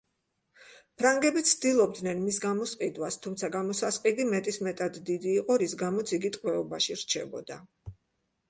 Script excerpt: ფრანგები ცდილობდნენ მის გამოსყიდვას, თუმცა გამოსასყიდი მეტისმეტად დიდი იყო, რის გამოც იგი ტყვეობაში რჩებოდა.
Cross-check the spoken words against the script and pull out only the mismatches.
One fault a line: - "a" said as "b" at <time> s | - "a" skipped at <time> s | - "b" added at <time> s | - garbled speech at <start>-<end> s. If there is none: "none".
none